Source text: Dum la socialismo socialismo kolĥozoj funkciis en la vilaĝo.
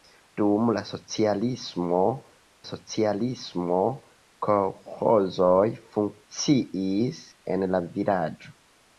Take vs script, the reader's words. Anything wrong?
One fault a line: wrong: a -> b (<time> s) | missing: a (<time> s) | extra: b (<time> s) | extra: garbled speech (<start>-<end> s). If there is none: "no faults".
no faults